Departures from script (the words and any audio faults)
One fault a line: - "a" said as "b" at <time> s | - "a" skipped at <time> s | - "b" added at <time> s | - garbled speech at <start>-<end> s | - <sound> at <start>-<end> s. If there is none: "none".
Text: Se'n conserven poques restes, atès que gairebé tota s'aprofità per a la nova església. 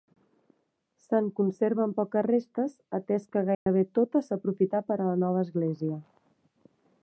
- dropout at 3.5-3.7 s